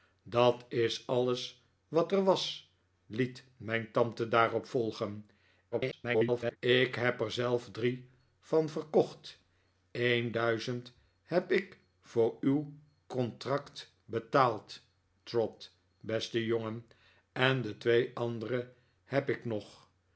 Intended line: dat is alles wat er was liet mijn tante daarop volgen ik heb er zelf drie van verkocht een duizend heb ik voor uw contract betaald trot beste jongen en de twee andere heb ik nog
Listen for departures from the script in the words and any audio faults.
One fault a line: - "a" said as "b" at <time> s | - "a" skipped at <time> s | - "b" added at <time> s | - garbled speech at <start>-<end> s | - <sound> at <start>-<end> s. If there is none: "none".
- garbled speech at 5.7-6.6 s